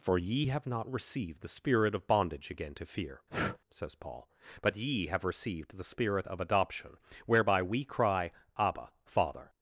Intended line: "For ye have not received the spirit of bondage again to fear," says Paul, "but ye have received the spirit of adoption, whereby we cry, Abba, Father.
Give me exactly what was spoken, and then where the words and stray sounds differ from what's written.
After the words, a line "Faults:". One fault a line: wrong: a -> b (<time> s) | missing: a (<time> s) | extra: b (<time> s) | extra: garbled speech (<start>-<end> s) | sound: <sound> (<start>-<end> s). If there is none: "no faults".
"For ye have not received the spirit of bondage again to fear," says Paul, "but ye have received the spirit of adoption, whereby we cry, Abba, Father.
Faults:
sound: breath (3.3-3.6 s)